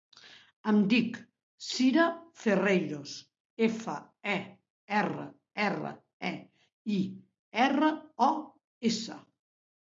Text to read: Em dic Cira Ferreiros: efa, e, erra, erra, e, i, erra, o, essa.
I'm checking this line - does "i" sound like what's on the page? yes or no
yes